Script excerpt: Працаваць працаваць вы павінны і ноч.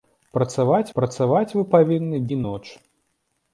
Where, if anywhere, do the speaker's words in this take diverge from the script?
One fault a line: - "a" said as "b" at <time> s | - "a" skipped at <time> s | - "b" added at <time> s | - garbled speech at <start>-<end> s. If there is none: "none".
none